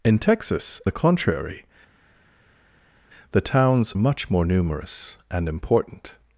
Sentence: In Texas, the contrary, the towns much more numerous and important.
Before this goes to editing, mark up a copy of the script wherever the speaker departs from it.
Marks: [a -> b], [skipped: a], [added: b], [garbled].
In Texas, the contrary, the towns much more numerous and important.